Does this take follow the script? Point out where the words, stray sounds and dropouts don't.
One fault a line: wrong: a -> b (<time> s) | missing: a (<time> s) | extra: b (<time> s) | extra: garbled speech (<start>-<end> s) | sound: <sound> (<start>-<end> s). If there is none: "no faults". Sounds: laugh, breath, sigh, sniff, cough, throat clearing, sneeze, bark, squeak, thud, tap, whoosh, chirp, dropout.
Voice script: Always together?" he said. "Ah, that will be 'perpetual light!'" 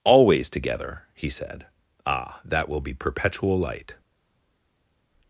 no faults